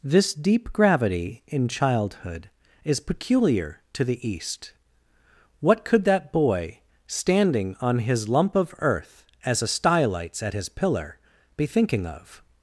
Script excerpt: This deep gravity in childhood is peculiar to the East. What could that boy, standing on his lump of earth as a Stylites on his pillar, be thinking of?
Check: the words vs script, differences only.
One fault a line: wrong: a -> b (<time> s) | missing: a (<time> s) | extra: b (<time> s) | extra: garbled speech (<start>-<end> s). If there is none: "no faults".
wrong: on -> at (10.4 s)